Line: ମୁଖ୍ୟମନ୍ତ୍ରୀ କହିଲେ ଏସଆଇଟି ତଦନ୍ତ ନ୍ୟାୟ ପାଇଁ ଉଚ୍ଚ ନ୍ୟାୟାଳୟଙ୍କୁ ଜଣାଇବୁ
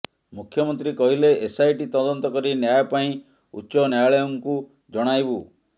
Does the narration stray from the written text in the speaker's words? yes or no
yes